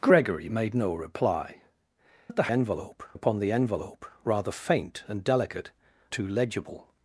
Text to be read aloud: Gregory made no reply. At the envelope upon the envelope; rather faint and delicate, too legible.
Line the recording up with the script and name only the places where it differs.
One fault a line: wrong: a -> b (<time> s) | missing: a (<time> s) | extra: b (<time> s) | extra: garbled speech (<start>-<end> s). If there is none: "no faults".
no faults